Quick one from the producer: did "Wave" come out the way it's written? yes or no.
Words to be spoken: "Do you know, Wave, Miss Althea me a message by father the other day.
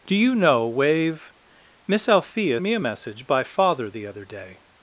yes